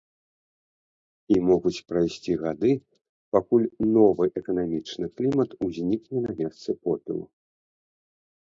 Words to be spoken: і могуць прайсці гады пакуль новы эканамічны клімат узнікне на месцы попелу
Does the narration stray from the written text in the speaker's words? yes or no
no